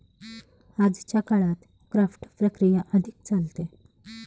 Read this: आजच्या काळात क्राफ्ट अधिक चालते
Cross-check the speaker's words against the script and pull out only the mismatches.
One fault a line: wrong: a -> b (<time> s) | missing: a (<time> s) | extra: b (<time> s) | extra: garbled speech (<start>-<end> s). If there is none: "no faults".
extra: प्रक्रिया (2.4 s)